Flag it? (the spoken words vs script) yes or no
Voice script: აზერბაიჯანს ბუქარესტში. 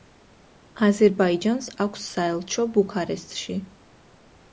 yes